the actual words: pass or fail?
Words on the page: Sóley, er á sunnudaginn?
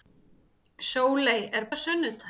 pass